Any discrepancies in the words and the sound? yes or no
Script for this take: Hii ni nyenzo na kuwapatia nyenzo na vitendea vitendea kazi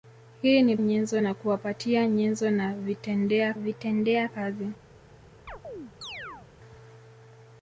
yes